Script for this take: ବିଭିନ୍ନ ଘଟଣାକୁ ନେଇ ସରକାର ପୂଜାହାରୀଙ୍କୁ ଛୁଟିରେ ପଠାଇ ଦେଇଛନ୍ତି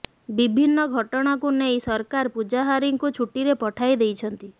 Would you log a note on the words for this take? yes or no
no